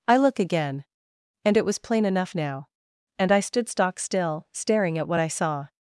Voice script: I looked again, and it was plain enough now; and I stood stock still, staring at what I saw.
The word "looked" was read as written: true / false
false